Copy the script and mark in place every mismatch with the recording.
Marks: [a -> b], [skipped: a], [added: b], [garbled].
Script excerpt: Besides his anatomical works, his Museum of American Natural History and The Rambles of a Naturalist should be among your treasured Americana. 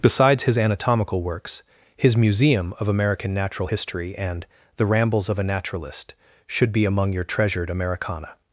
Besides his anatomical works, his Museum of American Natural History and The Rambles of a Naturalist should be among your treasured Americana.